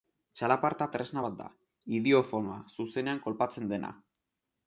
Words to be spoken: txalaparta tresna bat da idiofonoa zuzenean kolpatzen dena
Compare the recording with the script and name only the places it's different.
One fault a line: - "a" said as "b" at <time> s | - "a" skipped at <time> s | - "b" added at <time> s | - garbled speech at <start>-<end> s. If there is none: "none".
none